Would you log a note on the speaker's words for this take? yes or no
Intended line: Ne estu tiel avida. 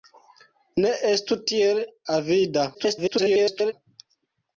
yes